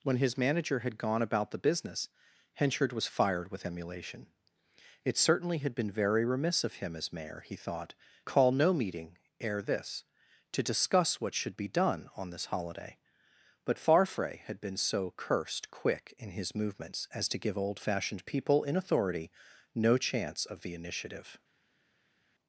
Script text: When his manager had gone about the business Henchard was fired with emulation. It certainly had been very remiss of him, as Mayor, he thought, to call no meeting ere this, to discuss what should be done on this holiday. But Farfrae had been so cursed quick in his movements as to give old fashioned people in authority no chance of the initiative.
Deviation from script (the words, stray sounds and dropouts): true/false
true